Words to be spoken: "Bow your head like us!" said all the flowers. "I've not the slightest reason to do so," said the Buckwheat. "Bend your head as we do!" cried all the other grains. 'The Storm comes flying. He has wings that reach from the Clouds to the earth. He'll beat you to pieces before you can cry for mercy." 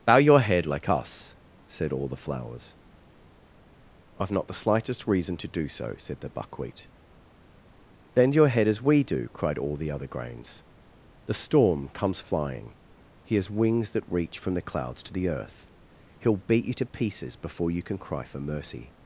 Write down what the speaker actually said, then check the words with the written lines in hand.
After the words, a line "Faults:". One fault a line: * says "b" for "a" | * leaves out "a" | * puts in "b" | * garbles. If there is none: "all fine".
"Bow your head like us!" said all the flowers. "I've not the slightest reason to do so," said the Buckwheat. "Bend your head as we do!" cried all the other grains. 'The Storm comes flying. He has wings that reach from the Clouds to the earth. He'll beat you to pieces before you can cry for mercy."
Faults:
all fine